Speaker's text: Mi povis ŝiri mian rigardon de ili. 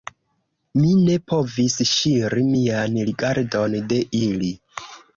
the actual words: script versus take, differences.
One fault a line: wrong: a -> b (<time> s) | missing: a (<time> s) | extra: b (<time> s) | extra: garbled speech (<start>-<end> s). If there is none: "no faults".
extra: ne (1.0 s)